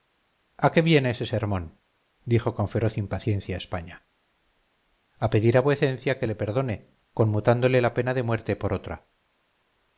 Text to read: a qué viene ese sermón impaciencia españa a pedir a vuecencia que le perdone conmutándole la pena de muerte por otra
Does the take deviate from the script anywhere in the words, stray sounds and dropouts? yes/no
yes